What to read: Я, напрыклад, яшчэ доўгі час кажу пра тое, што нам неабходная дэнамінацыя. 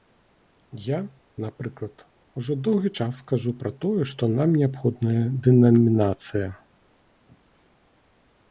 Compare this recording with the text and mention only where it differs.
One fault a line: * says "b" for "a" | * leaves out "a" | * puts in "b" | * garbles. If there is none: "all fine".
* says "ужо" for "яшчэ"